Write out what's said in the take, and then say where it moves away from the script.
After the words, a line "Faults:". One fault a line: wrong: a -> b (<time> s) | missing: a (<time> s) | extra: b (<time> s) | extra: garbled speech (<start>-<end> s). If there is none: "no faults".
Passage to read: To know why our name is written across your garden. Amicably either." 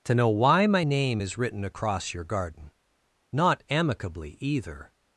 To know why my name is written across your garden. Not amicably either."
Faults:
wrong: our -> my (0.7 s)
extra: Not (3.3 s)